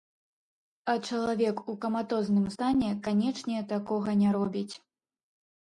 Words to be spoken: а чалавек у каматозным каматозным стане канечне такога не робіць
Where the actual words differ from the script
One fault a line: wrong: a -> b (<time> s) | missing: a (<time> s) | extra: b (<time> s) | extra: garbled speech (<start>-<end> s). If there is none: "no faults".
missing: каматозным (2.5 s)